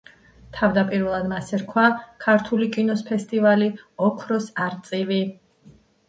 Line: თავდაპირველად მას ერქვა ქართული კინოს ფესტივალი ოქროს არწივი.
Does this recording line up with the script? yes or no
yes